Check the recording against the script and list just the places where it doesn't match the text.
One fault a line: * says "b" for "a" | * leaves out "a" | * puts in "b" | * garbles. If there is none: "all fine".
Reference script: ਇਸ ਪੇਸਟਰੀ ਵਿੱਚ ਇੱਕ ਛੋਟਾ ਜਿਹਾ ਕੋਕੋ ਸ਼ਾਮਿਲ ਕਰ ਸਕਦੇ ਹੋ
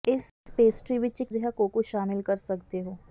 * leaves out "ਛੋਟਾ"